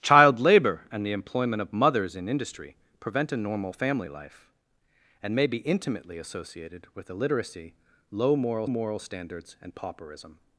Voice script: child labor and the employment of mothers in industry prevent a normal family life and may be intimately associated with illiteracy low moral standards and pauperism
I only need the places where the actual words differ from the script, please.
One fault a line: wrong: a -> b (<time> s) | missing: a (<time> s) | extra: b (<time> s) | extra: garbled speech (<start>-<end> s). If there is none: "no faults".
extra: moral (8.7 s)